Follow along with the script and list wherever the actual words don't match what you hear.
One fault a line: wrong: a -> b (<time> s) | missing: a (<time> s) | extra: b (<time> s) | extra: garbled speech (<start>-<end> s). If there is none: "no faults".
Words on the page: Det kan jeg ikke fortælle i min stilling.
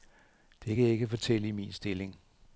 no faults